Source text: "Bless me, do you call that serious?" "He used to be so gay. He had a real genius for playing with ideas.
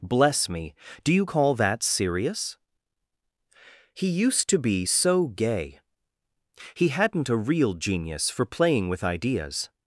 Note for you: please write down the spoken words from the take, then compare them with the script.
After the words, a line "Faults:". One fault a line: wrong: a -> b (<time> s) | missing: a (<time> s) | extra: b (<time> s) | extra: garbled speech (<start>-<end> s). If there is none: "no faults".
"Bless me, do you call that serious?" "He used to be so gay. He hadn't a real genius for playing with ideas.
Faults:
wrong: had -> hadn't (6.9 s)